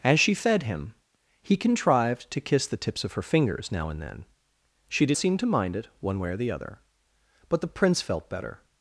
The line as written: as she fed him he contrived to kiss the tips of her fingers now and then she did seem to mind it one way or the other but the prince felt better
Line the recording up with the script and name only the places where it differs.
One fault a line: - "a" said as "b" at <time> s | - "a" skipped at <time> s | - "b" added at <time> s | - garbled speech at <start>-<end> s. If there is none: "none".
none